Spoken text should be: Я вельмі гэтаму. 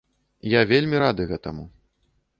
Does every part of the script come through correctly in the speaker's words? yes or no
no